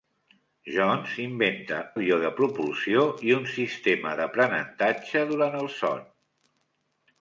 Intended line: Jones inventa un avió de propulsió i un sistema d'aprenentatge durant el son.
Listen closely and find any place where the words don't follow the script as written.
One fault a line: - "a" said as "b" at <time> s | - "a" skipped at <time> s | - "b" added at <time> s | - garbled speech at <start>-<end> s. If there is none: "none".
- "un" skipped at 1.8 s